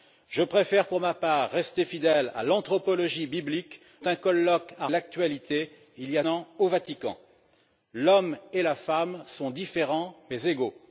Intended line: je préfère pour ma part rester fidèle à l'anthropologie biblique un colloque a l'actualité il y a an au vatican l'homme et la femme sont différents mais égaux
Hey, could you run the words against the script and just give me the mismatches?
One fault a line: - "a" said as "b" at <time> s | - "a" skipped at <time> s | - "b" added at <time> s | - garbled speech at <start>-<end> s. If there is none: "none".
none